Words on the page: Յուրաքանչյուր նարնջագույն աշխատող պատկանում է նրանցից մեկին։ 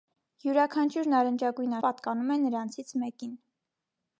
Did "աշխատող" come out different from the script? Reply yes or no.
yes